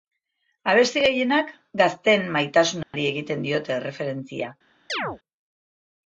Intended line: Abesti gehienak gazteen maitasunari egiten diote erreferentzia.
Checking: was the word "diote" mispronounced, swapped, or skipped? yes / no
no